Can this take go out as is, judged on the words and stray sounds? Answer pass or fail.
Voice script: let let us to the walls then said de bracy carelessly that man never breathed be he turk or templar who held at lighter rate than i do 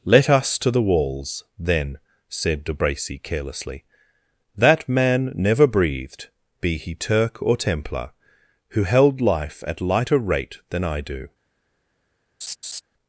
fail